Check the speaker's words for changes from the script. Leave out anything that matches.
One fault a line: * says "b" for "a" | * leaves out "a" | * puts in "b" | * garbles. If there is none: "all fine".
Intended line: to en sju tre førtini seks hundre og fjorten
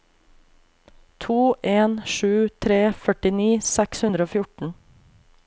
all fine